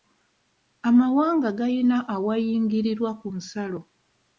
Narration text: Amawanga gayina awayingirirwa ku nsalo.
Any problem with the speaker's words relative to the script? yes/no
no